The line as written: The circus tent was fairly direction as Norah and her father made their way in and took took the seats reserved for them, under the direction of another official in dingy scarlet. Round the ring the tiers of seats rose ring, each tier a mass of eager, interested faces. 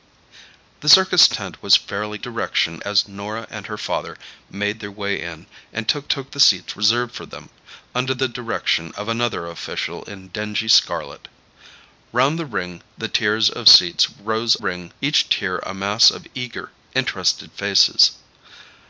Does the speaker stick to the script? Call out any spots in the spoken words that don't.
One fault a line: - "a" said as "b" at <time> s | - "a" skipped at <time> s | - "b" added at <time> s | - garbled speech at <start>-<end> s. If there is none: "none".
none